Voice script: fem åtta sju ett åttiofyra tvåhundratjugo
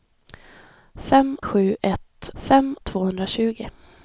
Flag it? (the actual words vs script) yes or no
yes